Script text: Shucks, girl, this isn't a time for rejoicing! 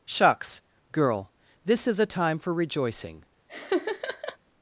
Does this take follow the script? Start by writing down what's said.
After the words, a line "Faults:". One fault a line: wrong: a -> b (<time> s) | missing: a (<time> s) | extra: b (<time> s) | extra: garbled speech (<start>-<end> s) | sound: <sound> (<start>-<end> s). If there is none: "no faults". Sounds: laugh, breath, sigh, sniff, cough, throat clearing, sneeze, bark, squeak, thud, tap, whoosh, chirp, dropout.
Shucks, girl, this is a time for rejoicing!
Faults:
wrong: isn't -> is (1.9 s)
sound: laugh (3.5-4.4 s)